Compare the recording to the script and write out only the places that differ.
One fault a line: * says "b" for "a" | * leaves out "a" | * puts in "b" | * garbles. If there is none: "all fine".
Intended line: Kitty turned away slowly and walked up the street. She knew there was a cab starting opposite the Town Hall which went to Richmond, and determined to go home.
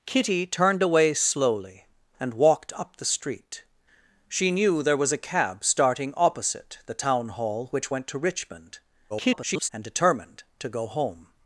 * garbles